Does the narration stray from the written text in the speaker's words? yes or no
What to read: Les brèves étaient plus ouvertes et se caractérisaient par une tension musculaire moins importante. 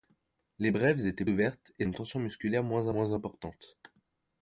yes